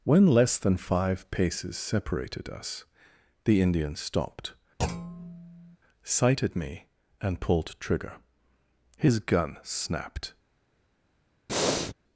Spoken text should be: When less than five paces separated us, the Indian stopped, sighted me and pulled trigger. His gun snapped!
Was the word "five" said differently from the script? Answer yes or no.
no